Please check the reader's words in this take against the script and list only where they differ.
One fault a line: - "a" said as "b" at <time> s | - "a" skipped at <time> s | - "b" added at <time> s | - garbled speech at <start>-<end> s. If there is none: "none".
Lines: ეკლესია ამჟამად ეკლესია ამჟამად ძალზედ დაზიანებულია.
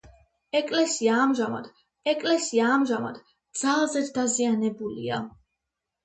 none